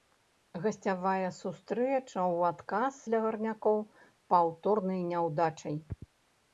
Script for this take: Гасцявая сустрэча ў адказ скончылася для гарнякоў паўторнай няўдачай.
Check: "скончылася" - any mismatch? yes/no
yes